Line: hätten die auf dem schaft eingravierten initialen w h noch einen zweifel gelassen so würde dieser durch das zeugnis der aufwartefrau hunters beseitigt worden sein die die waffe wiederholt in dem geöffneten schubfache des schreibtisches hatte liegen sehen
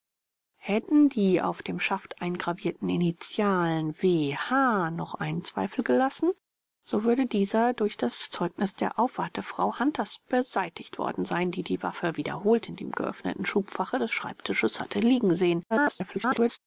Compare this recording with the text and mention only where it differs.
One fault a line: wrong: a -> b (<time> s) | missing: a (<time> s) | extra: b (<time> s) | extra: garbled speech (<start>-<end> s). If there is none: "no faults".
extra: garbled speech (15.7-16.6 s)